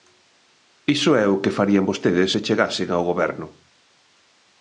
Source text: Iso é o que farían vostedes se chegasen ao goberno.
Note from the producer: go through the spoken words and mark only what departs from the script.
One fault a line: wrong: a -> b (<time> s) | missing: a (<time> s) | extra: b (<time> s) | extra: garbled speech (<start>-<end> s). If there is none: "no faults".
no faults